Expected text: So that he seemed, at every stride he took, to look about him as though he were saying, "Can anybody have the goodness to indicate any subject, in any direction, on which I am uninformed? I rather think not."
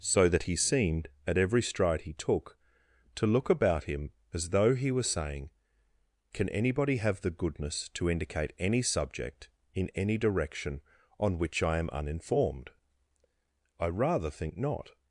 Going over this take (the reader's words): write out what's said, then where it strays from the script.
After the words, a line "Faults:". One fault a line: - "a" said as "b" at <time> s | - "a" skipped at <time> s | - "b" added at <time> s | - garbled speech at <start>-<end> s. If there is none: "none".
So that he seemed, at every stride he took, to look about him as though he were saying, "Can anybody have the goodness to indicate any subject, in any direction, on which I am uninformed? I rather think not."
Faults:
none